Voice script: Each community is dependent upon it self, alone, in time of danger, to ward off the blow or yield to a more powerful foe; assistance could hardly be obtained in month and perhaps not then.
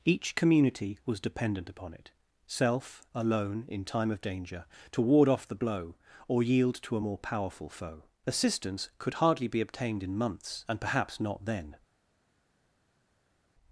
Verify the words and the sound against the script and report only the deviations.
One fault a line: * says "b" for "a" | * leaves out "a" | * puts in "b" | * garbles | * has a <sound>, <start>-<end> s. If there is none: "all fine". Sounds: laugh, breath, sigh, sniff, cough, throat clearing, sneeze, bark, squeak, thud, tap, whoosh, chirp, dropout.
* says "was" for "is"
* says "months" for "month"